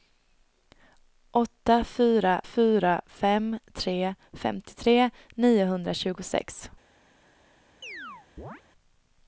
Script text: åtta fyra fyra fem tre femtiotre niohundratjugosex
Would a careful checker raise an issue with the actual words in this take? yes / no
no